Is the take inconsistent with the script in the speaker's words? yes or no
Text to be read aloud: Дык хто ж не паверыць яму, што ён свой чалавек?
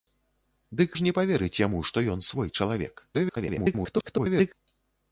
yes